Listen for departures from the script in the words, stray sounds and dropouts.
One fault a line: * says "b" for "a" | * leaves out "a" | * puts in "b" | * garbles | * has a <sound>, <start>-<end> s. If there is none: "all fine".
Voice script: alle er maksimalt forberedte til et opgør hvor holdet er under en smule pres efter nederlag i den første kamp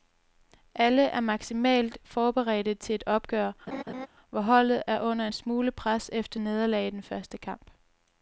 * has a laugh, 3.7-4.1 s